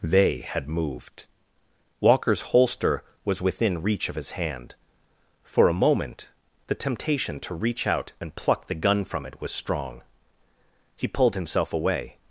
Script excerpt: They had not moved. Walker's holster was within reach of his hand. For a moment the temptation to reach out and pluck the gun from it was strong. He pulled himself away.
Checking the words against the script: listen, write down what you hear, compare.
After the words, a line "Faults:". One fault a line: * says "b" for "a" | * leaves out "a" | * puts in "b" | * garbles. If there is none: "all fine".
They had moved. Walker's holster was within reach of his hand. For a moment the temptation to reach out and pluck the gun from it was strong. He pulled himself away.
Faults:
* leaves out "not"